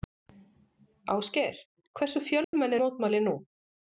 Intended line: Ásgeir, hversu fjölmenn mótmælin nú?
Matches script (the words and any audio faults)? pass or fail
fail